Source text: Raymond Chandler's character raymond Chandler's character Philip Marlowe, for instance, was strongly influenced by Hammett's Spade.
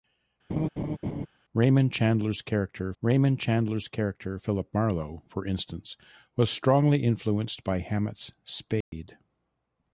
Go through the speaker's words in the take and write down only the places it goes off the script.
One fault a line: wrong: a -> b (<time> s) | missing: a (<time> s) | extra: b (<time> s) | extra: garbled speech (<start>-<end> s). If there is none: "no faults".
no faults